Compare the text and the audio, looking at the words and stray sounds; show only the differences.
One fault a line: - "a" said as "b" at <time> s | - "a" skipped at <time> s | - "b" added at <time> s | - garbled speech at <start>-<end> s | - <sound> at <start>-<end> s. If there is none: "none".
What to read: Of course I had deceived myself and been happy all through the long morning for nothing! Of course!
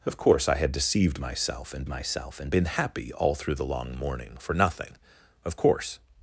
- "myself and" added at 1.9 s